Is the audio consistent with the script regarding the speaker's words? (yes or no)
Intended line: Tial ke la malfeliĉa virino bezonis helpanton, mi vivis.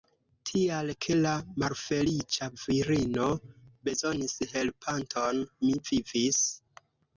yes